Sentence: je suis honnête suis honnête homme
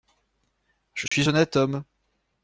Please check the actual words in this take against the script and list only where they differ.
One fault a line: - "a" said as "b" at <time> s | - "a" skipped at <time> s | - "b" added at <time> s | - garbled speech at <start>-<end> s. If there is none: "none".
- "suis honnête" skipped at 1.6 s